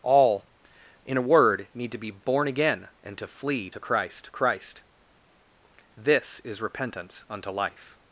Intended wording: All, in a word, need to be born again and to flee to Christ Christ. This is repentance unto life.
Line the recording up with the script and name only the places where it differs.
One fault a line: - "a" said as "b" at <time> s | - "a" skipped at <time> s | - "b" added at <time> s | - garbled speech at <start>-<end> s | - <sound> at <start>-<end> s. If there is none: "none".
none